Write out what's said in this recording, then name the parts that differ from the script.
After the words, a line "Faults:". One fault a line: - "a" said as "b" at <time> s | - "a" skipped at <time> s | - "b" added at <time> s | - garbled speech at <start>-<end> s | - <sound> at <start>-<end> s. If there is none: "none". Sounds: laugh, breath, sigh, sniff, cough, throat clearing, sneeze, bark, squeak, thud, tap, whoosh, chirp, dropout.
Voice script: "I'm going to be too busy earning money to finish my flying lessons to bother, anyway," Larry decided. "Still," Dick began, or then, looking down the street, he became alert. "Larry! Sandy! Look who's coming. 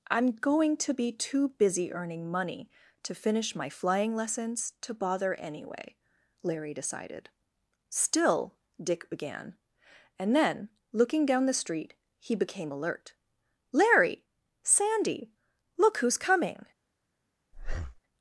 "I'm going to be too busy earning money to finish my flying lessons to bother, anyway," Larry decided. "Still," Dick began, and then, looking down the street, he became alert. "Larry! Sandy! Look who's coming.
Faults:
- "or" said as "and" at 10.2 s
- breath at 17.5-18.0 s